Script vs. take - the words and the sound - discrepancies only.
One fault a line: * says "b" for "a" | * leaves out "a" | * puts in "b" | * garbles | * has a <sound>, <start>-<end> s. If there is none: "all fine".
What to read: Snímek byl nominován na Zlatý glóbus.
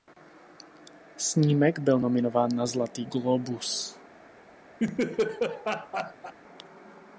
* has a laugh, 4.8-6.3 s